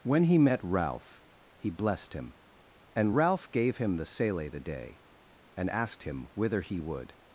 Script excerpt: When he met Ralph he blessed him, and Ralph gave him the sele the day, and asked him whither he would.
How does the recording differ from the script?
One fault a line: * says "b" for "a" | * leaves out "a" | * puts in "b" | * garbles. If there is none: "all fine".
all fine